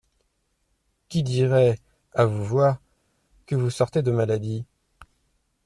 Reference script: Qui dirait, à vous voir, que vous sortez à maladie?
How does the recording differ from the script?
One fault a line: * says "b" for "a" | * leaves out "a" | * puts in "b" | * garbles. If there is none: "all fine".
* says "de" for "à"